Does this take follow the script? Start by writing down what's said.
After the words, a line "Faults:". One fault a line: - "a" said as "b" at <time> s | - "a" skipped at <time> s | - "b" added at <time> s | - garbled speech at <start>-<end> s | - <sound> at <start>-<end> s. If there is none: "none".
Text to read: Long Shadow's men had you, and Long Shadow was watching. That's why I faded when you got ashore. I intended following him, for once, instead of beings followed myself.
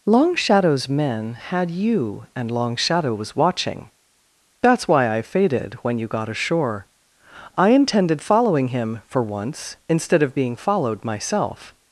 Long Shadow's men had you, and Long Shadow was watching. That's why I faded when you got ashore. I intended following him, for once, instead of being followed myself.
Faults:
- "beings" said as "being" at 10.4 s